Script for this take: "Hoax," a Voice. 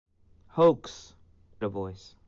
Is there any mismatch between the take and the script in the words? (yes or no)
no